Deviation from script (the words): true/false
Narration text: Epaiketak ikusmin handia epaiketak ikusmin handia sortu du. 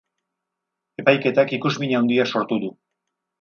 true